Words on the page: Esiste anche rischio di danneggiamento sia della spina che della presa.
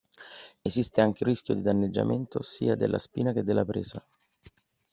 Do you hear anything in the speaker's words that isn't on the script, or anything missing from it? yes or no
no